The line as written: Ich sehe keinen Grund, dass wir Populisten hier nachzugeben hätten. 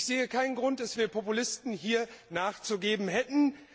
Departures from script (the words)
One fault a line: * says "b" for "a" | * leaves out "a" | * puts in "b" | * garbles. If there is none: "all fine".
all fine